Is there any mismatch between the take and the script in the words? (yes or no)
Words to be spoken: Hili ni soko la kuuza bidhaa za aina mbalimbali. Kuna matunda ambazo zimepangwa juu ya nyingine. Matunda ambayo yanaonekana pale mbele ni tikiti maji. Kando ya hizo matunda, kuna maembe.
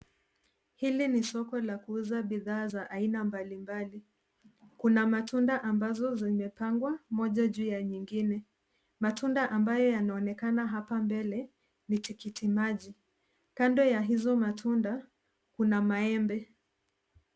yes